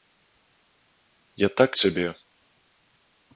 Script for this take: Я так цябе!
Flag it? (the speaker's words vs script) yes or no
no